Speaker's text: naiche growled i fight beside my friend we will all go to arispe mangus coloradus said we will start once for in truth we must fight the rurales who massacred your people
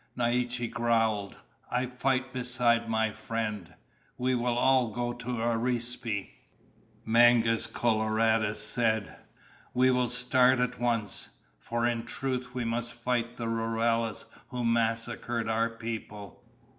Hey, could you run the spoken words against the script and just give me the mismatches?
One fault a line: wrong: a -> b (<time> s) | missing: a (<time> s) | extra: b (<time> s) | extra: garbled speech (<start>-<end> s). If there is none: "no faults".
extra: at (10.6 s)
wrong: your -> our (15.5 s)